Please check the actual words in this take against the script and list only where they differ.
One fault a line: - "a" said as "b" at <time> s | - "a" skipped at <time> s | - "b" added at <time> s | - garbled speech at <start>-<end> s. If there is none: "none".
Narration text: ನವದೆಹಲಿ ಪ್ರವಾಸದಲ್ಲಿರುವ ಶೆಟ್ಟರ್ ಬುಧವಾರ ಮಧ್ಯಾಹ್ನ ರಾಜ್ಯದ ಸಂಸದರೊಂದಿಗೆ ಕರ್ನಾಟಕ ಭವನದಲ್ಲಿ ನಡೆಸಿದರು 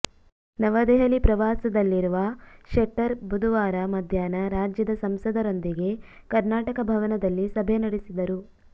- "ಸಭೆ" added at 7.5 s